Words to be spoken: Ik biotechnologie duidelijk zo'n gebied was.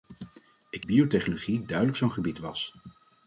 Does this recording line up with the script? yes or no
yes